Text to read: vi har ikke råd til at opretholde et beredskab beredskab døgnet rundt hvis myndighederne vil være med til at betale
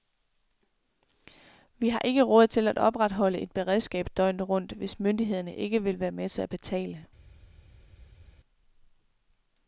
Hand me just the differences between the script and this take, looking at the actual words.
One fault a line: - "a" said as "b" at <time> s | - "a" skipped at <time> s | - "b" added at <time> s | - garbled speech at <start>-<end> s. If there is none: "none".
- "beredskab" skipped at 4.1 s
- "ikke" added at 5.5 s